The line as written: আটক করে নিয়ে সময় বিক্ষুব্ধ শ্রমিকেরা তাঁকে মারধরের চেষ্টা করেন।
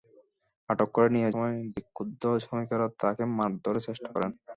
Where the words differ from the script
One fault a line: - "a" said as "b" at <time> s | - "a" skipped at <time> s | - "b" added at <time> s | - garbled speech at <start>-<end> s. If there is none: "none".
none